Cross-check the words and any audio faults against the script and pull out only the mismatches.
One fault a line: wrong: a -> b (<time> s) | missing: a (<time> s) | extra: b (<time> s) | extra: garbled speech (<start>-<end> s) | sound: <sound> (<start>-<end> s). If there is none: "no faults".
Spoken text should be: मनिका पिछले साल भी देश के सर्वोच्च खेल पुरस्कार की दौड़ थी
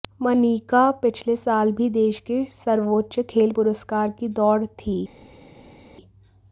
no faults